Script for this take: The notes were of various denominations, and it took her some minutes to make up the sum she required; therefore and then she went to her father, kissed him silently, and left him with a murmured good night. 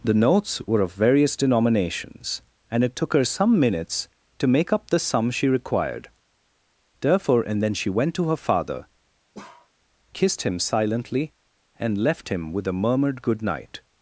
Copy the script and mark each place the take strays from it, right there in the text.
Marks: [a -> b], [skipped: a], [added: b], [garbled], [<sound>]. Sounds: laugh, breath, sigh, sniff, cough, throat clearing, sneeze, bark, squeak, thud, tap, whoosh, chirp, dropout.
The notes were of various denominations, and it took her some minutes to make up the sum she required; therefore and then she went to her father, [bark] kissed him silently, and left him with a murmured good night.